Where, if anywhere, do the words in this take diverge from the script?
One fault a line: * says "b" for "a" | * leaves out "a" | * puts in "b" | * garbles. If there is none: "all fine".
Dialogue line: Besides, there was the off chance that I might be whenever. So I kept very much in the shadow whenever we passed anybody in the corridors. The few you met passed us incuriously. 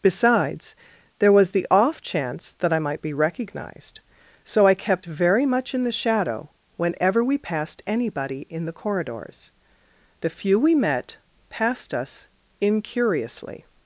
* says "recognized" for "whenever"
* says "we" for "you"